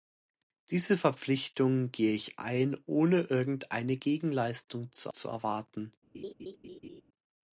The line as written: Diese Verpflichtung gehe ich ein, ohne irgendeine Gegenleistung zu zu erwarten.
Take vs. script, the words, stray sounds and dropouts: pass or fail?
fail